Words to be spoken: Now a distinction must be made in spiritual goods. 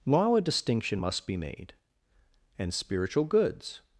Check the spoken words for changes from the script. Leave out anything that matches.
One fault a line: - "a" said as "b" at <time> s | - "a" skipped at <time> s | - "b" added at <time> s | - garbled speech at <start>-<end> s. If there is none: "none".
- "in" said as "and" at 2.6 s